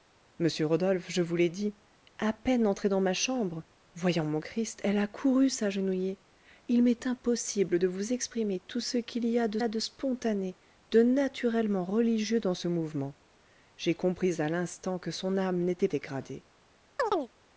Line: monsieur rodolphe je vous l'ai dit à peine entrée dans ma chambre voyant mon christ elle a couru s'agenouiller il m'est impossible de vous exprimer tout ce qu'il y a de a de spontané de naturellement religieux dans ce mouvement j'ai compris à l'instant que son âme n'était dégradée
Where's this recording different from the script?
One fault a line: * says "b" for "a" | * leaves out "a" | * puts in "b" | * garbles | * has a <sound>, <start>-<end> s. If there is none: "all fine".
* has a chirp, 17.0-17.3 s